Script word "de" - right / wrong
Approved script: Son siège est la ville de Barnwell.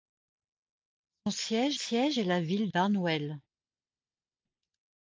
wrong